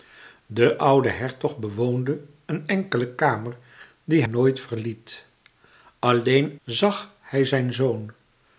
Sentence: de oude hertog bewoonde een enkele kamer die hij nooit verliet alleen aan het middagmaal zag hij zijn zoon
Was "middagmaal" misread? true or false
true